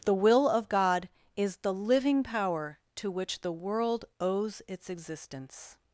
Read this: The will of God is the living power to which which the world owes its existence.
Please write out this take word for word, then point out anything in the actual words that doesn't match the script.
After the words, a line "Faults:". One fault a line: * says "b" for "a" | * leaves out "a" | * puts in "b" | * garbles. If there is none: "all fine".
The will of God is the living power to which the world owes its existence.
Faults:
* leaves out "which"